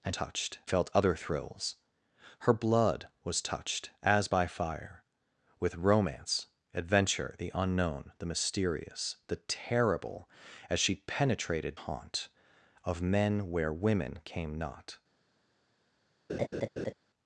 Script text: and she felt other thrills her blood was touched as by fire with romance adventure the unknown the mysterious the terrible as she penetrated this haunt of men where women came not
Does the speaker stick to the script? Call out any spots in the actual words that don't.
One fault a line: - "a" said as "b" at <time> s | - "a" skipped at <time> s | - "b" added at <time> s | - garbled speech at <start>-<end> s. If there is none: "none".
- "she" said as "touched" at 0.1 s
- "this" skipped at 11.8 s